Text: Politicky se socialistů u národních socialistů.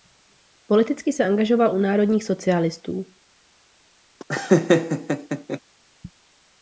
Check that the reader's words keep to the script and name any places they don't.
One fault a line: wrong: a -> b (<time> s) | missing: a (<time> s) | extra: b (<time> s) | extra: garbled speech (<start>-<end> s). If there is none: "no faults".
wrong: socialistů -> angažoval (1.2 s)